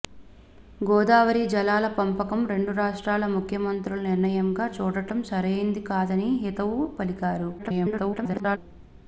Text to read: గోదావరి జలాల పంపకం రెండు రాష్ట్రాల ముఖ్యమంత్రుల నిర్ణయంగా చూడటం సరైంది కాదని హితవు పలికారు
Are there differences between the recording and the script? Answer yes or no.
yes